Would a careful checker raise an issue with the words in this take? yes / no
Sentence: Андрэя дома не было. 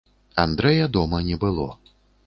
no